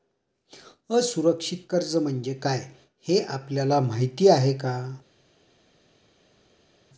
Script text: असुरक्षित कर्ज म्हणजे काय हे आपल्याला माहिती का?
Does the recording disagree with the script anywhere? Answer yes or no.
yes